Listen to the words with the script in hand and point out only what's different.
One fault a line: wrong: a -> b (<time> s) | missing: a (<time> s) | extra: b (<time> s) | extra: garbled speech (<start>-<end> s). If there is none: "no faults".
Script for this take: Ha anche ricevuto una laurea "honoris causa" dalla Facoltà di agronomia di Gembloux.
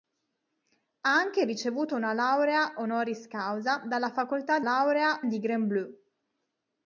wrong: agronomia -> laurea (4.6 s)